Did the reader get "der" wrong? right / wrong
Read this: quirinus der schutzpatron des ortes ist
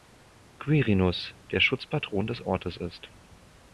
right